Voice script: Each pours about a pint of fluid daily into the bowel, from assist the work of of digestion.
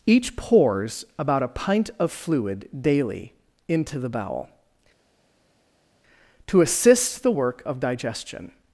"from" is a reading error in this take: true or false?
true